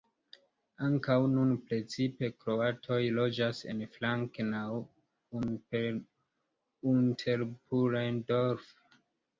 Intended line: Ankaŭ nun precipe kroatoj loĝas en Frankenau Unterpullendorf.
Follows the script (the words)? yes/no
yes